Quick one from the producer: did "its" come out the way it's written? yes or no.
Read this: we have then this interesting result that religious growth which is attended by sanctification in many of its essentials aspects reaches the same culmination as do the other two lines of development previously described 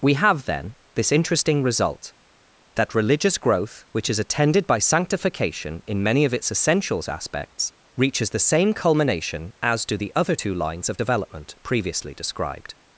yes